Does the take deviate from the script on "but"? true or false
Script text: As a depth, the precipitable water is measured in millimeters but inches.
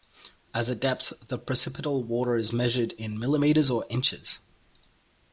true